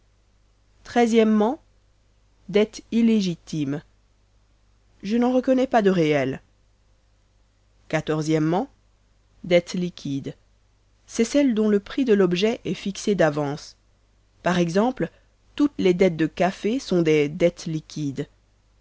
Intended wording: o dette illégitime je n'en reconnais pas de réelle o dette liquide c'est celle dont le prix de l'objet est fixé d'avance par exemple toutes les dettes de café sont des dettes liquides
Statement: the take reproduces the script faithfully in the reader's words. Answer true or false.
true